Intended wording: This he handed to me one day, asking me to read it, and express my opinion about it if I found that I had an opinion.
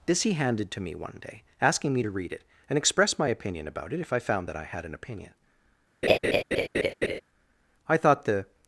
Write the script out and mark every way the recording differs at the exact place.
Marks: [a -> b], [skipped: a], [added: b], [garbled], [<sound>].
This he handed to me one day, asking me to read it, and express my opinion about it if I found that I had an opinion. [laugh] [added: I thought the]